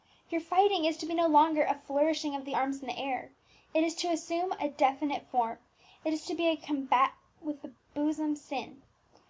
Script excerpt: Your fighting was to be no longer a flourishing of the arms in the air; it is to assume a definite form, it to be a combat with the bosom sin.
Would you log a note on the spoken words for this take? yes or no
yes